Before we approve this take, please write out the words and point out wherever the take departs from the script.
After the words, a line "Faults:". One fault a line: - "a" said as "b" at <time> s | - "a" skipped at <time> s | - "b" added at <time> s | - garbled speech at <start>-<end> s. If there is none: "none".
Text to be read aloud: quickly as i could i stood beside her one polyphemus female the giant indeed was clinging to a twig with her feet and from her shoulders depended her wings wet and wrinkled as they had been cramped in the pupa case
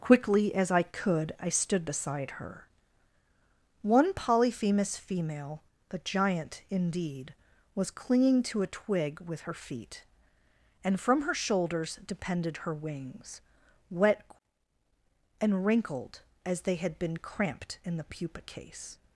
quickly as i could i stood beside her one polyphemus female the giant indeed was clinging to a twig with her feet and from her shoulders depended her wings wet and wrinkled as they had been cramped in the pupa case
Faults:
none